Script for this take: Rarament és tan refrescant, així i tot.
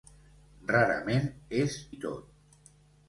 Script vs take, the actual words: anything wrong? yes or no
yes